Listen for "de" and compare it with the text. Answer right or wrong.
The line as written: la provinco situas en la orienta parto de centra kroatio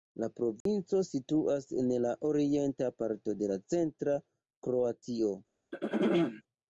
right